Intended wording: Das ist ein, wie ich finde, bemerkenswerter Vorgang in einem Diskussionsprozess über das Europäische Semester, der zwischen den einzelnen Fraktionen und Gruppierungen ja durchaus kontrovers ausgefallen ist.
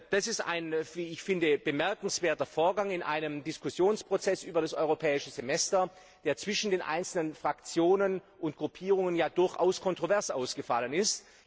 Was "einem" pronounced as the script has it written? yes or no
yes